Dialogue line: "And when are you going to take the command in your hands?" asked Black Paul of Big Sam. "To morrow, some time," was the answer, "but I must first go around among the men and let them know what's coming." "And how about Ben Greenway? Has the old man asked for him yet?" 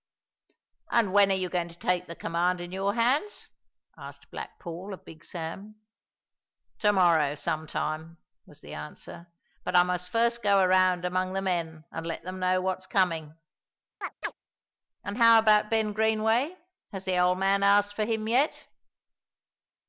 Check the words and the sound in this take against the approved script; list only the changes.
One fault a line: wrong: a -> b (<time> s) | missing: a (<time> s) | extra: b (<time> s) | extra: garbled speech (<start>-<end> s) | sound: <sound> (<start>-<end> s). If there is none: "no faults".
sound: chirp (14.0-14.3 s)